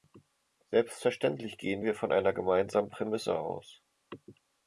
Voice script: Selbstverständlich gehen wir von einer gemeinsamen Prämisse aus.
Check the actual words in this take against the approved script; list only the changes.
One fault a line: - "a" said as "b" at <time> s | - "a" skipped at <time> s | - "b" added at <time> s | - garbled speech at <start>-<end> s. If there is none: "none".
none